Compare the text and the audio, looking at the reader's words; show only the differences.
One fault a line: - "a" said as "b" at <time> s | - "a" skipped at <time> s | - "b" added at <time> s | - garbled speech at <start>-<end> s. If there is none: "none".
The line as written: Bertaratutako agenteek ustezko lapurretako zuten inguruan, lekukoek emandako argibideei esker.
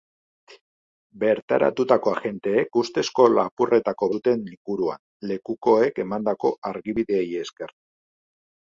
none